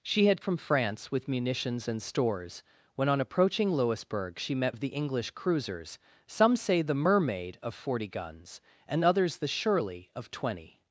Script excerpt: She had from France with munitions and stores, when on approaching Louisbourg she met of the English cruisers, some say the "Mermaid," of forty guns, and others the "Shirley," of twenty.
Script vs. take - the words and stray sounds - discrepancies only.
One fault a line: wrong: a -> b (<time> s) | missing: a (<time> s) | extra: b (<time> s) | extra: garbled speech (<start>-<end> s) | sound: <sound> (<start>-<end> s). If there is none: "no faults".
no faults